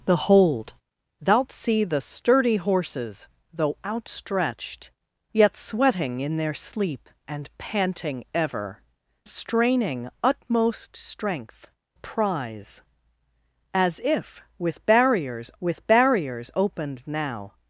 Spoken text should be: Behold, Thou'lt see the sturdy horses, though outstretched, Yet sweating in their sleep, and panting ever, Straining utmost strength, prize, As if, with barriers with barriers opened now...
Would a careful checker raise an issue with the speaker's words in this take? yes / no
no